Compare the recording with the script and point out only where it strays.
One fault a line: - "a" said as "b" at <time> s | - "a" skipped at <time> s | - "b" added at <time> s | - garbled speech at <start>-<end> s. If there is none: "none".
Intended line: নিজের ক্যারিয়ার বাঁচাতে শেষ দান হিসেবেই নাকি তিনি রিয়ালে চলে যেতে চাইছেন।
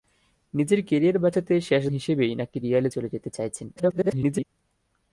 - "দান" skipped at 1.8 s
- "তিনি" skipped at 2.6 s
- garbled speech at 3.8-4.5 s